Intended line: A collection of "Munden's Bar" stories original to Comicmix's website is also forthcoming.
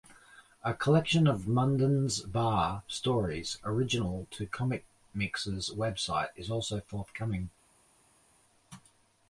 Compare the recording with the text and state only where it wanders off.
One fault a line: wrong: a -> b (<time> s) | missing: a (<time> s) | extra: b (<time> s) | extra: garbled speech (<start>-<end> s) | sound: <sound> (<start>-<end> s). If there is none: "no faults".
no faults